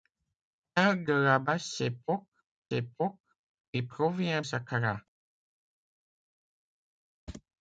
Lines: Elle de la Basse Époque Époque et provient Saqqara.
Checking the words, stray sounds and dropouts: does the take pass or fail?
pass